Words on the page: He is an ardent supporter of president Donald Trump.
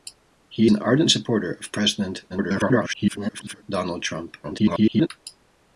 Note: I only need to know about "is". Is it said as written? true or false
false